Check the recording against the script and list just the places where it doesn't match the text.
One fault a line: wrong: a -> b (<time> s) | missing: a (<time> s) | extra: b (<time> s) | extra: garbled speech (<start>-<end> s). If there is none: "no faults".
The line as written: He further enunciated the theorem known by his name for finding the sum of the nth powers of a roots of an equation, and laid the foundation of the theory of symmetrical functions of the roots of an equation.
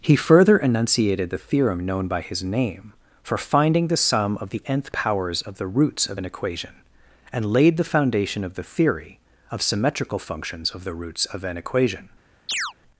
wrong: a -> the (5.6 s)